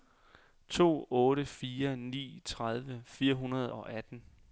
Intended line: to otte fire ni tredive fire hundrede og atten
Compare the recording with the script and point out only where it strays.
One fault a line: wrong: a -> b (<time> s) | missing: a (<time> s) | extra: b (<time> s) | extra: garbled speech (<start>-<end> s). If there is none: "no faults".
no faults